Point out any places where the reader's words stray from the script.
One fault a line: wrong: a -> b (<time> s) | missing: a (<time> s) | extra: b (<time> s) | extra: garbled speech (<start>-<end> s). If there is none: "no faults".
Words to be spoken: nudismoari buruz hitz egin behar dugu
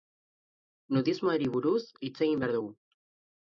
no faults